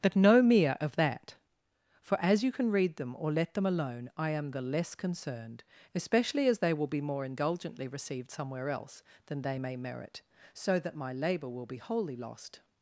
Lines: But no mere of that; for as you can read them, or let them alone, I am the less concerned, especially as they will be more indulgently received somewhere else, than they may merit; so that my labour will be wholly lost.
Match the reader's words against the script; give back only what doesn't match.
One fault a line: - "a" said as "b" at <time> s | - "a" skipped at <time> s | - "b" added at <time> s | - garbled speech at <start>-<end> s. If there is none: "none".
none